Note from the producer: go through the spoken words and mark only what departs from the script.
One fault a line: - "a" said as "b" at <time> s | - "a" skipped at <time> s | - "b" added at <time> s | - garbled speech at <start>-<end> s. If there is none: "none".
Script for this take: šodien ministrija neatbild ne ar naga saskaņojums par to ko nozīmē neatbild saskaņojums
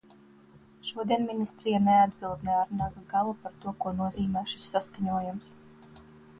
- "saskaņojums" said as "galu" at 3.1 s
- "neatbild" said as "šis" at 4.5 s